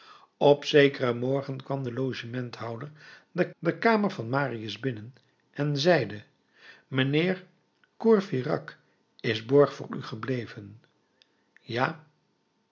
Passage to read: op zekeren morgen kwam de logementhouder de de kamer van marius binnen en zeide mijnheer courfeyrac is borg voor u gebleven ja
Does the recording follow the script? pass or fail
pass